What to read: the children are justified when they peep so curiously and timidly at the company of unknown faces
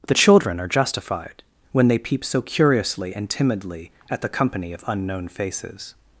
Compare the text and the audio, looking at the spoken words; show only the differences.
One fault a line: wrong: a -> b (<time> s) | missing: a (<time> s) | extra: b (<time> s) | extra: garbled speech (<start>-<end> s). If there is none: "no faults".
no faults